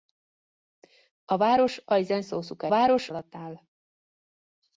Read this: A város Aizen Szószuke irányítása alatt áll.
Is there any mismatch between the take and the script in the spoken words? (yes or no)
yes